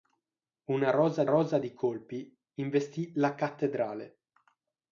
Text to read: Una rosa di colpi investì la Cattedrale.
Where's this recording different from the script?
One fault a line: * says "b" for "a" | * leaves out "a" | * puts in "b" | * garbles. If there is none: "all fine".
* puts in "rosa"